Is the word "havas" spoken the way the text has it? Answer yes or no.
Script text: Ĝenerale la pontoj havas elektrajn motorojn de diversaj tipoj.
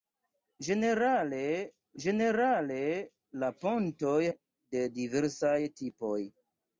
no